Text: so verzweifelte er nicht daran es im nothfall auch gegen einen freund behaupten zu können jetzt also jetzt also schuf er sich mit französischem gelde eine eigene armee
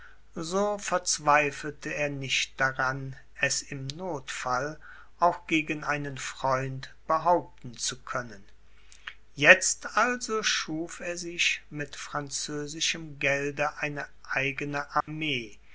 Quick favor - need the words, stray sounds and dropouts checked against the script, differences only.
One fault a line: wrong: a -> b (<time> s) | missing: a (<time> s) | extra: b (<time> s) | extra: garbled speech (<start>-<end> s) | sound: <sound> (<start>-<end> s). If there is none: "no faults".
missing: jetzt also (10.4 s)
sound: dropout (15.0-15.1 s)